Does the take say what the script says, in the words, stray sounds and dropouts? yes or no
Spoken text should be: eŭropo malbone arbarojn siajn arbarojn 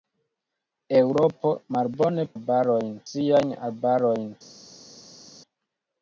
yes